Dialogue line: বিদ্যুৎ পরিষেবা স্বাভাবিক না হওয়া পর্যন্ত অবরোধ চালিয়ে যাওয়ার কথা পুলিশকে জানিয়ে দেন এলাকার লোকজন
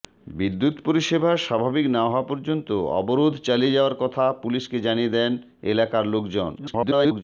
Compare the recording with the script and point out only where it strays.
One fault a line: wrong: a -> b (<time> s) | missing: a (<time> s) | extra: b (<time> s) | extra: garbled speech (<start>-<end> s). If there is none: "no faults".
extra: garbled speech (6.6-7.2 s)